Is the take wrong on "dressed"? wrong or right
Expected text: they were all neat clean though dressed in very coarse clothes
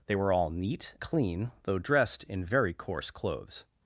right